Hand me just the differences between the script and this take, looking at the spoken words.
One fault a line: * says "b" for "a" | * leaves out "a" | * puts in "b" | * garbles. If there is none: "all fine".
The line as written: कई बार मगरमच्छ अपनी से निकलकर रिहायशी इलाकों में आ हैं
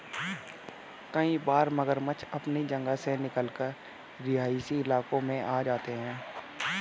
* puts in "जगह"
* puts in "जाते"